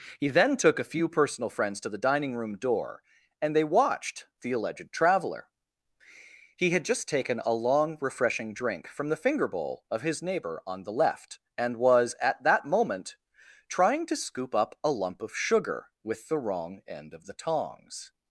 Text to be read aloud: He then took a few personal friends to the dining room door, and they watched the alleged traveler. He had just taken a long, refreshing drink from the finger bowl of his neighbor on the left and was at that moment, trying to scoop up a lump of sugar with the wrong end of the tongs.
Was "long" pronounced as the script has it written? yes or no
yes